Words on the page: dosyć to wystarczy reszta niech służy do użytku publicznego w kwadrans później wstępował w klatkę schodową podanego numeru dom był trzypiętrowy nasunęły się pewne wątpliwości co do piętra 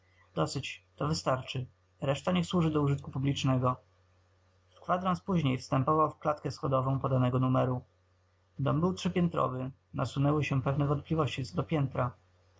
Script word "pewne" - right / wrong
right